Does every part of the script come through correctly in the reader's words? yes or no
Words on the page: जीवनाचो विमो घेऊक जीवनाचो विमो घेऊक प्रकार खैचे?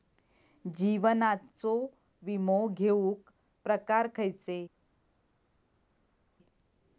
no